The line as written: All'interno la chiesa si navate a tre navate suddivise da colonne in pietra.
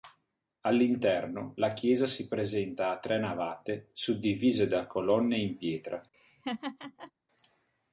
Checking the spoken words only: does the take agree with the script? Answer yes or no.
no